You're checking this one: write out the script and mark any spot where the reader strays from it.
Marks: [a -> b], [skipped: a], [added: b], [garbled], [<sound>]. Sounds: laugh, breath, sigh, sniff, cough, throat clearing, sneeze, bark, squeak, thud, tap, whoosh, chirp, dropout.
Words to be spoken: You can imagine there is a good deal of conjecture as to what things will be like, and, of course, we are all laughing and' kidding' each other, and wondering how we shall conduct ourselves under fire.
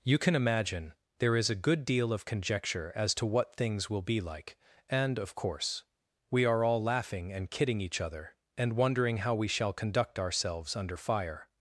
You can imagine there is a good deal of conjecture as to what things will be like, and, of course, we are all laughing and' kidding' each other, and wondering how we shall conduct ourselves under fire.